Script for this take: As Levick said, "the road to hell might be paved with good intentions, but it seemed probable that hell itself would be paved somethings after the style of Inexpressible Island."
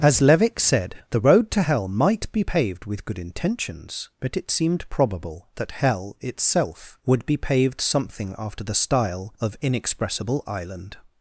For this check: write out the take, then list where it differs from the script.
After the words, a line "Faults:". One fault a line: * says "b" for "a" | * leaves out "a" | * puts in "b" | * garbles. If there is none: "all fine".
As Levick said, "the road to hell might be paved with good intentions, but it seemed probable that hell itself would be paved something after the style of Inexpressible Island."
Faults:
* says "something" for "somethings"